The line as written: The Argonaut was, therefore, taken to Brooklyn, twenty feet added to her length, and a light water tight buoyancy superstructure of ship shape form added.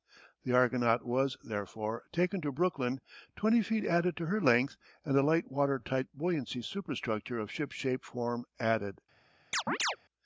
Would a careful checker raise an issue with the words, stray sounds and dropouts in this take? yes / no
yes